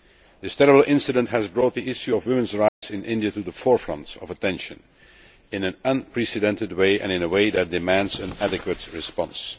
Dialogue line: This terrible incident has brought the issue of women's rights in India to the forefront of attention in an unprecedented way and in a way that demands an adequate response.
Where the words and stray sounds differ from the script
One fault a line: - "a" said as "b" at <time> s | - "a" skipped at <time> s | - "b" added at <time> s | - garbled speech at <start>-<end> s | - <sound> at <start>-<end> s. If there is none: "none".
- dropout at 2.7-2.8 s